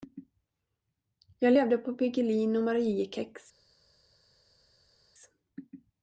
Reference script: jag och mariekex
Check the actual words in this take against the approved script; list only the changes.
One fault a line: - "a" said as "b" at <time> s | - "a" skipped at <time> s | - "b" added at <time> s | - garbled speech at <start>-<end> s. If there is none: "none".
- "levde på piggelin" added at 1.5 s